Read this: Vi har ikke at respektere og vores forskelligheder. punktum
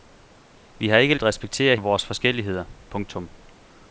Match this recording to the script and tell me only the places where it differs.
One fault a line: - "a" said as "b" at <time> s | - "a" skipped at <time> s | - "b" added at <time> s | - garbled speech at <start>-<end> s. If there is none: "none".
none